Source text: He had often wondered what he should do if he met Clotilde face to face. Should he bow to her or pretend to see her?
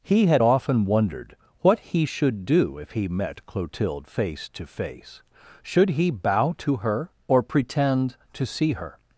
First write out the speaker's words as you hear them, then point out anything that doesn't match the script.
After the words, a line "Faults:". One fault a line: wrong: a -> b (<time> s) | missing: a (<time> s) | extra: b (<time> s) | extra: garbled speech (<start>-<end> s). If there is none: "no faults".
He had often wondered what he should do if he met Clotilde face to face. Should he bow to her or pretend to see her?
Faults:
no faults